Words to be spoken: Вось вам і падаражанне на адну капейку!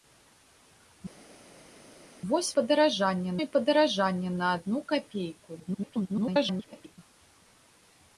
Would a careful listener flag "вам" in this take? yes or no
yes